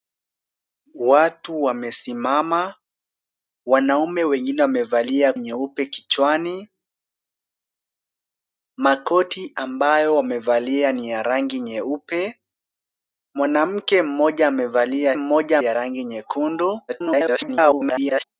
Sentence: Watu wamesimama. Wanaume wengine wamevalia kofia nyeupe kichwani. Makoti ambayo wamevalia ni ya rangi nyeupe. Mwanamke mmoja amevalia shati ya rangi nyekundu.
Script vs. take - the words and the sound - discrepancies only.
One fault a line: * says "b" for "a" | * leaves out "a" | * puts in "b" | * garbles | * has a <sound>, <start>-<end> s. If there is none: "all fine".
* leaves out "kofia"
* says "mmoja" for "shati"
* garbles